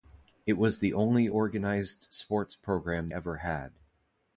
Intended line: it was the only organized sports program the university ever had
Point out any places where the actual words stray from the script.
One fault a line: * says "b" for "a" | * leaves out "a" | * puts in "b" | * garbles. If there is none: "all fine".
* leaves out "the university"